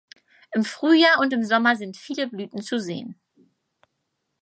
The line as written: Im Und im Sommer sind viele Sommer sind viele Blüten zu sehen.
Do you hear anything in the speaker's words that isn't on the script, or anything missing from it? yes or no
yes